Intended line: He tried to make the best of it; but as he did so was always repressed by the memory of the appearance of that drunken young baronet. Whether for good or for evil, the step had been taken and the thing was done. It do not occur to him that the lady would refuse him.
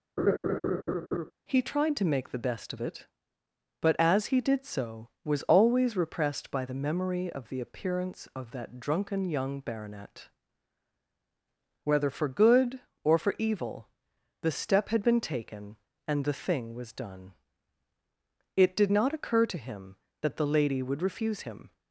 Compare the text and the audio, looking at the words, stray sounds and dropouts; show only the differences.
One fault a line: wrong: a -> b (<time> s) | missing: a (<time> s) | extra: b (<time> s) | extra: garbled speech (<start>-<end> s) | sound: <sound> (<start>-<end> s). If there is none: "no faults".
sound: laugh (0.2-1.3 s)
wrong: do -> did (18.7 s)